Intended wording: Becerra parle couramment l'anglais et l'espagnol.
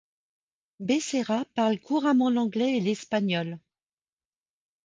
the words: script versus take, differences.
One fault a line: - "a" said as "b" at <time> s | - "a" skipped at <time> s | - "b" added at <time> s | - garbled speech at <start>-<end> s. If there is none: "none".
none